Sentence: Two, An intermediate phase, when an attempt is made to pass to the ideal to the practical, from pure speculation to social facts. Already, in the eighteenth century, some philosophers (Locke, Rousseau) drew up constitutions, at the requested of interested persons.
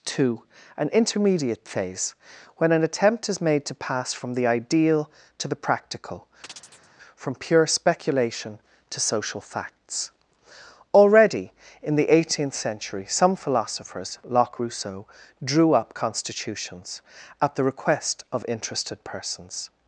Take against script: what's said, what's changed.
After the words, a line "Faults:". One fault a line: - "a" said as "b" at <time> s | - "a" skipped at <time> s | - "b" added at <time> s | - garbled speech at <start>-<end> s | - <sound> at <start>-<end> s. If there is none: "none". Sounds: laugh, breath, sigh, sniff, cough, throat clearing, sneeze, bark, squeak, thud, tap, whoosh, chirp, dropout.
Two, An intermediate phase, when an attempt is made to pass from the ideal to the practical, from pure speculation to social facts. Already, in the eighteenth century, some philosophers (Locke, Rousseau) drew up constitutions, at the request of interested persons.
Faults:
- "to" said as "from" at 4.1 s
- chirp at 6.4-6.9 s
- "requested" said as "request" at 17.6 s